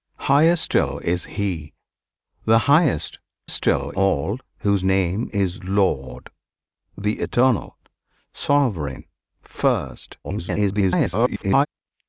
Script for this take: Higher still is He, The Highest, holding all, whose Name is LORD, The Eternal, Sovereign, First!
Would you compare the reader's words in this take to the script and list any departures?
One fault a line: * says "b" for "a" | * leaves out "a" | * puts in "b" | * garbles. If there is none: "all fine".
* says "still" for "holding"
* garbles